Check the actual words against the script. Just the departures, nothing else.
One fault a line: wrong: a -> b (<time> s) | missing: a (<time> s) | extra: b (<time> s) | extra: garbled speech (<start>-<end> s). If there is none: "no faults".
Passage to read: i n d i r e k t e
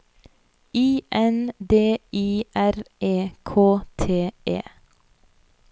no faults